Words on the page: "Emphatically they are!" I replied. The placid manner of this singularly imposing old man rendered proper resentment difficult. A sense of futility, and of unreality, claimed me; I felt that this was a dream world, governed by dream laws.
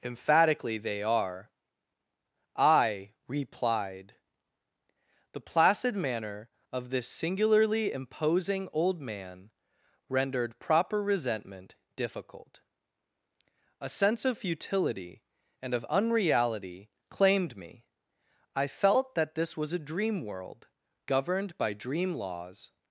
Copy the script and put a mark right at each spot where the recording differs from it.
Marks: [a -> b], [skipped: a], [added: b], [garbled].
"Emphatically they are!" I replied. The placid manner of this singularly imposing old man rendered proper resentment difficult. A sense of futility, and of unreality, claimed me; I felt that this was a dream world, governed by dream laws.